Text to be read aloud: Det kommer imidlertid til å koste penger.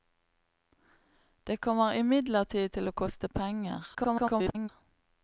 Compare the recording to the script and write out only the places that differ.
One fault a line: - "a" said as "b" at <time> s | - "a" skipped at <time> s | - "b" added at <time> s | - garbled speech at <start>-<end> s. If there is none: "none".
- garbled speech at 3.9-4.7 s